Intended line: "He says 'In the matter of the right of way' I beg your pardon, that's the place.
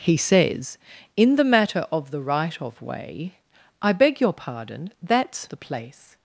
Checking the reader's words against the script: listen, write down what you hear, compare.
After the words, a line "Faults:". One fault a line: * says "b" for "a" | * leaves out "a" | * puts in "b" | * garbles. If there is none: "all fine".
"He says 'In the matter of the right of way' I beg your pardon, that's the place.
Faults:
all fine